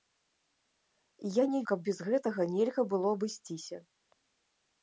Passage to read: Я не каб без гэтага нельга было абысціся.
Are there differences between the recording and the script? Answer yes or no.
no